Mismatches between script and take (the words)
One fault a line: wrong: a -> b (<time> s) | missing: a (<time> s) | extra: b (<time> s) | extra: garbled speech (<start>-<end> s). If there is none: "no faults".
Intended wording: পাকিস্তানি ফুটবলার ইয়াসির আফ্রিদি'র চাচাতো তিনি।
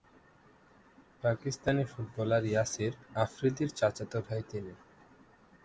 extra: ভাই (4.2 s)